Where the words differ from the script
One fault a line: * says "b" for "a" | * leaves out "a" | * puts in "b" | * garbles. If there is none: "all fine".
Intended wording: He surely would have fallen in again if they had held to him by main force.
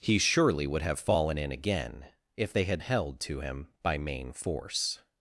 all fine